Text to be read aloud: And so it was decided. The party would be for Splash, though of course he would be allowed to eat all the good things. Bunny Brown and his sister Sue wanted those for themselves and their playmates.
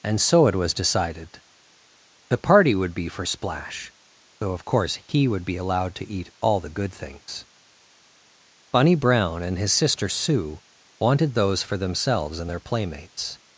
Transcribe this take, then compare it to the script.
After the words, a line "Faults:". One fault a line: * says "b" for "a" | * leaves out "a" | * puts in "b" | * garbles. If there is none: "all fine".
And so it was decided. The party would be for Splash, though of course he would be allowed to eat all the good things. Bunny Brown and his sister Sue wanted those for themselves and their playmates.
Faults:
all fine